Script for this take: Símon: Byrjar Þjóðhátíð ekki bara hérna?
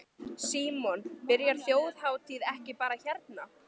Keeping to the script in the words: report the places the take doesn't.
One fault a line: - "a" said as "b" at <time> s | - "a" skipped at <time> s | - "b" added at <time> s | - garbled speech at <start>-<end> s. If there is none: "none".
none